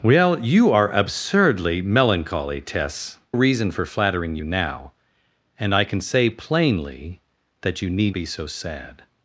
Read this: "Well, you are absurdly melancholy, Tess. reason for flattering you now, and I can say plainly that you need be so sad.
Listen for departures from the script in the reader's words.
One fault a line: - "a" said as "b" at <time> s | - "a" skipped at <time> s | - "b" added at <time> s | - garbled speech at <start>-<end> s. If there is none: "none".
none